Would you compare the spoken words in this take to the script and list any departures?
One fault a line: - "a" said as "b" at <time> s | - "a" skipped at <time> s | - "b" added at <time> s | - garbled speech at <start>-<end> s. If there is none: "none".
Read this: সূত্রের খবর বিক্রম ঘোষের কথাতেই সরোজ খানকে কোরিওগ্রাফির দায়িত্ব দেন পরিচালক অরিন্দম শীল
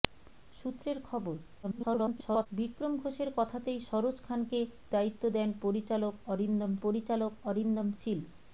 - garbled speech at 1.6-2.5 s
- "কোরিওগ্রাফির" skipped at 4.6 s
- "পরিচালক অরিন্দম" added at 6.8 s